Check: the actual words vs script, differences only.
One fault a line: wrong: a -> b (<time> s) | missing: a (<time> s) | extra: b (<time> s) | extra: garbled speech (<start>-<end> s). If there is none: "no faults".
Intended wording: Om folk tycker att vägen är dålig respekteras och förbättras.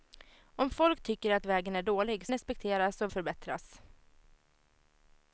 no faults